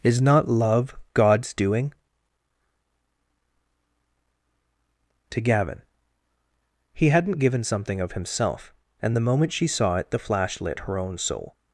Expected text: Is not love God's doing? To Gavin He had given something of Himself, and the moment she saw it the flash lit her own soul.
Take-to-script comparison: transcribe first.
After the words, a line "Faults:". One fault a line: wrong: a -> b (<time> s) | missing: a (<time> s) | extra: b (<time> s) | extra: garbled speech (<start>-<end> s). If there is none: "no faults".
Is not love God's doing? To Gavin He hadn't given something of Himself, and the moment she saw it the flash lit her own soul.
Faults:
wrong: had -> hadn't (7.1 s)